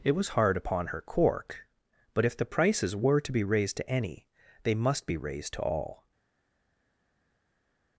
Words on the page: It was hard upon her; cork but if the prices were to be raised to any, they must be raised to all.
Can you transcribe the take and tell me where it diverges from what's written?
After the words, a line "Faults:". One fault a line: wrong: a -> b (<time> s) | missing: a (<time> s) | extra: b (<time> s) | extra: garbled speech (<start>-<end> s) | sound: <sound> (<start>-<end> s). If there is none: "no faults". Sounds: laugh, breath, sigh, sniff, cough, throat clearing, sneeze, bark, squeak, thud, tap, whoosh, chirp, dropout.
It was hard upon her; cork but if the prices were to be raised to any, they must be raised to all.
Faults:
no faults